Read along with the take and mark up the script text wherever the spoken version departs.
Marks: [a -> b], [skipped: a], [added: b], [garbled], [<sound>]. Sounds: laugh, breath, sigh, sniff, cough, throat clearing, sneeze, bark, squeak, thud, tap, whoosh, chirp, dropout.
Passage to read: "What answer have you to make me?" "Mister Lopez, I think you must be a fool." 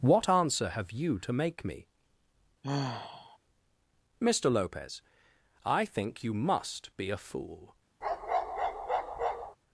"What answer have you to make me?" [sigh] "Mister Lopez, I think you must be a fool." [bark]